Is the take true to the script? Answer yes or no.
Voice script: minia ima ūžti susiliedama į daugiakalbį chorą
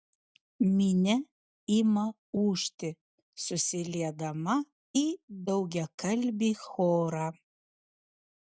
yes